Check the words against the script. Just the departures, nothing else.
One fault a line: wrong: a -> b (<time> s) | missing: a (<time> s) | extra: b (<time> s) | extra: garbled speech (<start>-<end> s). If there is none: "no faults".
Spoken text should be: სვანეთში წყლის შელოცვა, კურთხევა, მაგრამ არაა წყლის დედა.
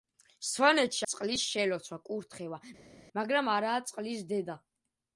no faults